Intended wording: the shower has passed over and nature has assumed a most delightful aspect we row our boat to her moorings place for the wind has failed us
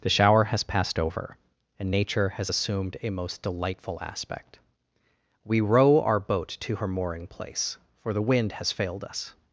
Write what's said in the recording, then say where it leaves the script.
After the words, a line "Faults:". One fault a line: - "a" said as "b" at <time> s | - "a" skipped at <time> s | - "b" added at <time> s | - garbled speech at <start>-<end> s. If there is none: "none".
the shower has passed over and nature has assumed a most delightful aspect we row our boat to her mooring place for the wind has failed us
Faults:
- "moorings" said as "mooring" at 6.9 s